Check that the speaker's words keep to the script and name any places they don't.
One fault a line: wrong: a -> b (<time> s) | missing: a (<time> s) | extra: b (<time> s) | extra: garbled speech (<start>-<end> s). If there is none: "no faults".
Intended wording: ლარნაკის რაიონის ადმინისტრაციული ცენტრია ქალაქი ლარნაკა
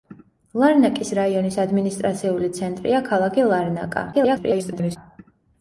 extra: garbled speech (4.1-5.0 s)